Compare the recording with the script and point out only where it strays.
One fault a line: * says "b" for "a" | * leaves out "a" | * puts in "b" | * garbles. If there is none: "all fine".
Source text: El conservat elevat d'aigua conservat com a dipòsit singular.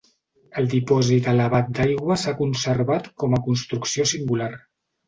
* says "dipòsit" for "conservat"
* puts in "s'ha"
* says "construcció" for "dipòsit"